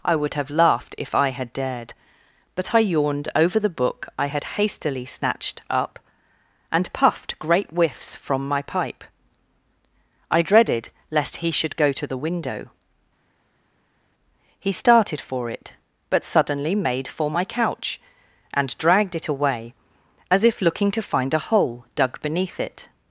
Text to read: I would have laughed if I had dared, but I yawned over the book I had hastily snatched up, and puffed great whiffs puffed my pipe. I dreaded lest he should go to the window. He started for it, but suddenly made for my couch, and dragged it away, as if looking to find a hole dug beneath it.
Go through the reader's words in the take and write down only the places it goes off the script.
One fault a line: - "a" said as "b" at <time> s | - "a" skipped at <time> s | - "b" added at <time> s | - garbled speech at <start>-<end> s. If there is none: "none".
- "puffed" said as "from" at 8.2 s